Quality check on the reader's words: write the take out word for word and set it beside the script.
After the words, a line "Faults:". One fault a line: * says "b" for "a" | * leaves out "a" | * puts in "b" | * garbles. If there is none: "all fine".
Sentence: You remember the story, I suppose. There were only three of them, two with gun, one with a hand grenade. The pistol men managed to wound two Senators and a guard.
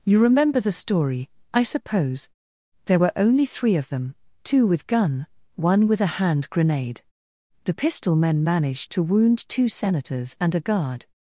You remember the story, I suppose. There were only three of them, two with gun, one with a hand grenade. The pistol men managed to wound two Senators and a guard.
Faults:
all fine